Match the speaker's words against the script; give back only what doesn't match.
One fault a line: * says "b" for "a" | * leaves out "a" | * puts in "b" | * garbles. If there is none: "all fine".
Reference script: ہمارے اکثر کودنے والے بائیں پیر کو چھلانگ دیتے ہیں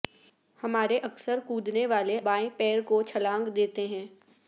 all fine